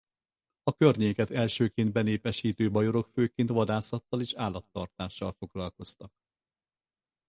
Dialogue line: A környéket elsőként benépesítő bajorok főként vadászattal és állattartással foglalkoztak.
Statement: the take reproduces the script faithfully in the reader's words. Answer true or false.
true